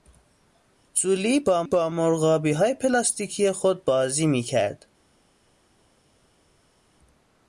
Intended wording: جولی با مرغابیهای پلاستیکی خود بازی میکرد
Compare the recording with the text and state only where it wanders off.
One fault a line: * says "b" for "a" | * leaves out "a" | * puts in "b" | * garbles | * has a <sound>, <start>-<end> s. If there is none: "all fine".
* puts in "با"